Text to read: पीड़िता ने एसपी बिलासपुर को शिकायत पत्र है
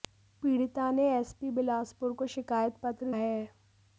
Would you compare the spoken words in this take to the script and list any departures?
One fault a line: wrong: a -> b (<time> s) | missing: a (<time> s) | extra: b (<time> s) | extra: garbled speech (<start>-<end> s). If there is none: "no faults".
no faults